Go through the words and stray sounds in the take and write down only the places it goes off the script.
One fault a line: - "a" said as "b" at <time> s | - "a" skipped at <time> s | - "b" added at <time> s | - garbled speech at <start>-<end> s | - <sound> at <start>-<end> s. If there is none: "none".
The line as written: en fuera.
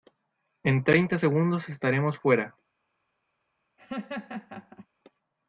- "treinta segundos estaremos" added at 0.8 s
- laugh at 3.8-4.9 s